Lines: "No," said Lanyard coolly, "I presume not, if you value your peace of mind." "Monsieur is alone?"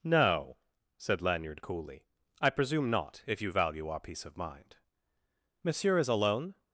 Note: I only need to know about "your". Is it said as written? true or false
false